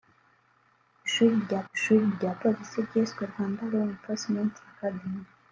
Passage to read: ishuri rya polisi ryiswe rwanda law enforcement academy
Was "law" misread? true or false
false